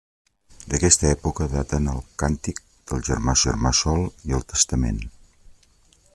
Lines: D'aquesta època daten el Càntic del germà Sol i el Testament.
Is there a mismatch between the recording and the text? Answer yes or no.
yes